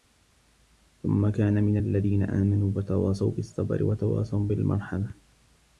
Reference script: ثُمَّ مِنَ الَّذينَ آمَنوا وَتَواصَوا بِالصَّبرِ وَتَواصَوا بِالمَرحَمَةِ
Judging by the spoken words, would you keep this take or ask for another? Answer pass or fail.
fail